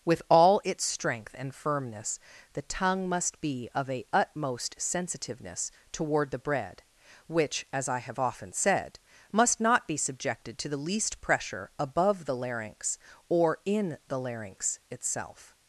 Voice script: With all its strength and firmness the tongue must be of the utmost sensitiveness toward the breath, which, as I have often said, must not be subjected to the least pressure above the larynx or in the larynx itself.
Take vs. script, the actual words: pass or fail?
fail